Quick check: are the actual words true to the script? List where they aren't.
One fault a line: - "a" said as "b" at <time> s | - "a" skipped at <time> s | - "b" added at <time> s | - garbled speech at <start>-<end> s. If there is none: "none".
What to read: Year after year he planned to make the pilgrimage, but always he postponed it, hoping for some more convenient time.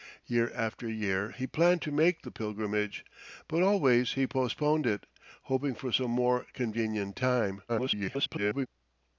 - garbled speech at 7.7-8.7 s